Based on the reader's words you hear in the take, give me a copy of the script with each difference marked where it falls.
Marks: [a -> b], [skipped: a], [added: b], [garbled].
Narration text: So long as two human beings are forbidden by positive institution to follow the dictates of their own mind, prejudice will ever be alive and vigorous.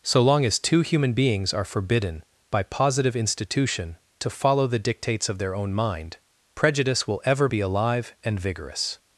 So long as two human beings are forbidden by positive institution to follow the dictates of their own mind, prejudice will ever be alive and vigorous.